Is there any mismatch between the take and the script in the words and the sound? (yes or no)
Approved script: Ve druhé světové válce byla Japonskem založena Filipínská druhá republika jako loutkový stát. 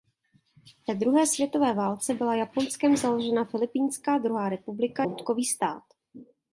yes